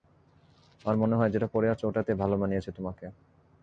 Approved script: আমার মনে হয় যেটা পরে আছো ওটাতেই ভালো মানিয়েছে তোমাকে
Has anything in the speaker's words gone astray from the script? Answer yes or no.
no